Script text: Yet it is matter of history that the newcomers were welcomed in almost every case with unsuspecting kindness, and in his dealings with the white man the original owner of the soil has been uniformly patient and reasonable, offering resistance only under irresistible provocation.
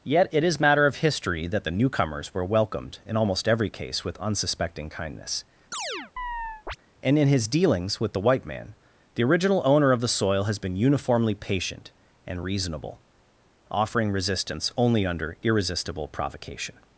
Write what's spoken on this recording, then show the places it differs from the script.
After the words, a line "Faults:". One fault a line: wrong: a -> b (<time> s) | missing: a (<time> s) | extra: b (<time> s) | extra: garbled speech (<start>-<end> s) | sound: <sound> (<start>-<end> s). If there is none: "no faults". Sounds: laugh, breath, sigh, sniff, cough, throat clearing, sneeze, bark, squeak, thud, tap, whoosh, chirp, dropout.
Yet it is matter of history that the newcomers were welcomed in almost every case with unsuspecting kindness, and in his dealings with the white man the original owner of the soil has been uniformly patient and reasonable, offering resistance only under irresistible provocation.
Faults:
sound: chirp (5.7-6.8 s)